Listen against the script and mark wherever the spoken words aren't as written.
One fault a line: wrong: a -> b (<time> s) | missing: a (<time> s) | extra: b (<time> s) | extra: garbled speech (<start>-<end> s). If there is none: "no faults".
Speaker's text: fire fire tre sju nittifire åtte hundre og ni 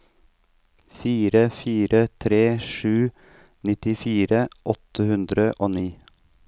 no faults